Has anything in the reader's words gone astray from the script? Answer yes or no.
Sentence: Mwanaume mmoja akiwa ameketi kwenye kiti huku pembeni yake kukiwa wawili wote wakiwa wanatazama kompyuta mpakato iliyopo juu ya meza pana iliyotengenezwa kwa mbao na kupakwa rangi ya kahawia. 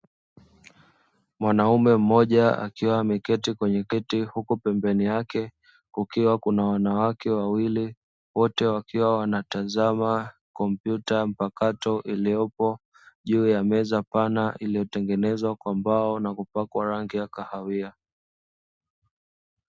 yes